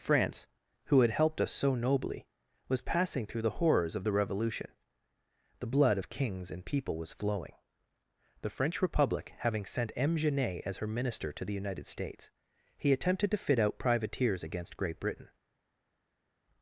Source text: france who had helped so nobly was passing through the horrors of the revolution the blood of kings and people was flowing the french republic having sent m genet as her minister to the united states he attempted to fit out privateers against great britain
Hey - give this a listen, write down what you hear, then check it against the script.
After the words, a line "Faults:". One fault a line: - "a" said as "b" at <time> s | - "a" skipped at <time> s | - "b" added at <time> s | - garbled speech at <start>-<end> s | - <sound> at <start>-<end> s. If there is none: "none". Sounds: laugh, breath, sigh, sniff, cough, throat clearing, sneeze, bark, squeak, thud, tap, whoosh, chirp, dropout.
france who had helped us so nobly was passing through the horrors of the revolution the blood of kings and people was flowing the french republic having sent m genet as her minister to the united states he attempted to fit out privateers against great britain
Faults:
- "us" added at 1.4 s